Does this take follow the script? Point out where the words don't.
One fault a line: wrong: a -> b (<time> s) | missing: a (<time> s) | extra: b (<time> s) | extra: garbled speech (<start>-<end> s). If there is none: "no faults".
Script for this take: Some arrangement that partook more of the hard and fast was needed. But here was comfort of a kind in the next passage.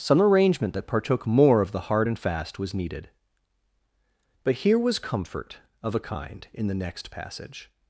no faults